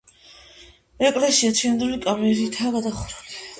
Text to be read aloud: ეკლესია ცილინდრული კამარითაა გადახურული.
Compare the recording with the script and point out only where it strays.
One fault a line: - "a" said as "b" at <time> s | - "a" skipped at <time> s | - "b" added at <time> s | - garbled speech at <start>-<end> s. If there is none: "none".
none